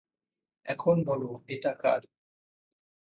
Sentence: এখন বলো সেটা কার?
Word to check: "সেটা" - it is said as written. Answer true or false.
false